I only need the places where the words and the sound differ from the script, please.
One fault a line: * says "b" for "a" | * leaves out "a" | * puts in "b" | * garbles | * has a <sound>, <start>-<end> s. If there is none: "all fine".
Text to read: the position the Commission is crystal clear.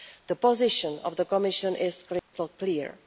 * puts in "of"
* has a dropout, 2.2-2.3 s